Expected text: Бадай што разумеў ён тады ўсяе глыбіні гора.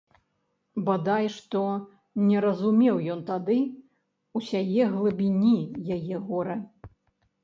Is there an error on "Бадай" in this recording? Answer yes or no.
no